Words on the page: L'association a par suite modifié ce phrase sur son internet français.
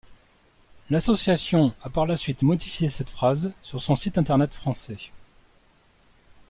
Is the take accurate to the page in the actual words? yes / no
no